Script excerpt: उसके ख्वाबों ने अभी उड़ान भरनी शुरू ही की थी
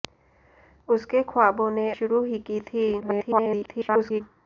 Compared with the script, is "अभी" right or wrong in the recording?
wrong